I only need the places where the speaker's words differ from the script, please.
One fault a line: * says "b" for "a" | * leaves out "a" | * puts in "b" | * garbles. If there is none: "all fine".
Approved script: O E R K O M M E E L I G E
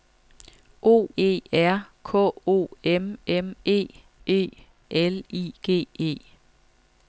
all fine